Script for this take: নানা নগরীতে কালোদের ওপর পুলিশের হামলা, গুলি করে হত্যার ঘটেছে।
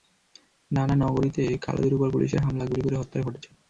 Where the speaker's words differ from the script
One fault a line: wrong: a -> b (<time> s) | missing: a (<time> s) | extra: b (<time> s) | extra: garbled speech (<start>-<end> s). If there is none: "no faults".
no faults